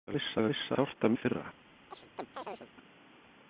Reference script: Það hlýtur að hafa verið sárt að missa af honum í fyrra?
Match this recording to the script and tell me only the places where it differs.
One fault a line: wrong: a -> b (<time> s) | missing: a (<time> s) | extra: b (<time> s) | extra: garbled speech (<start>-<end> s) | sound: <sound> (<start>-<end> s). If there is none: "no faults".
wrong: hlýtur -> missa (0.1 s)
wrong: verið -> missa (0.5 s)
missing: missa af honum (1.1 s)
sound: chirp (1.9-2.7 s)